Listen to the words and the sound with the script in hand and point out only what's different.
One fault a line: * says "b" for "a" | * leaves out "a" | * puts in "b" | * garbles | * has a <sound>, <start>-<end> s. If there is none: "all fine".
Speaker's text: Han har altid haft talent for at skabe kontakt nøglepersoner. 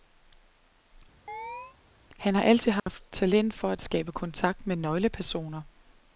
* has a chirp, 1.3-1.8 s
* has a dropout, 2.8-2.9 s
* puts in "med"